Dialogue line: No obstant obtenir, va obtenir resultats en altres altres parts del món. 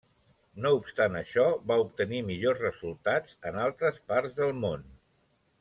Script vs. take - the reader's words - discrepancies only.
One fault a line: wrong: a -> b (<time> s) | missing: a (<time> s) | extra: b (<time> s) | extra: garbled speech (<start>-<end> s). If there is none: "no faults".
wrong: obtenir -> això (1.2 s)
extra: millors (2.3 s)
missing: altres (4.0 s)